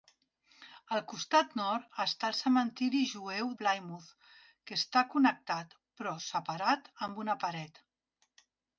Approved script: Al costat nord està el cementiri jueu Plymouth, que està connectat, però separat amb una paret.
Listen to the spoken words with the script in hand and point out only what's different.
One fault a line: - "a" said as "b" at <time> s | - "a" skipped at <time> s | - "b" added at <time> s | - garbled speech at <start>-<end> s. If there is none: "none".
none